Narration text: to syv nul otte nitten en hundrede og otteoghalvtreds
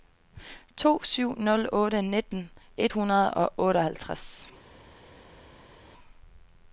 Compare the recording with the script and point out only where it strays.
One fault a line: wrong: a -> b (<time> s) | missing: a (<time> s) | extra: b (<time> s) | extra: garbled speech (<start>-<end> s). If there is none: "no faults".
wrong: en -> et (2.8 s)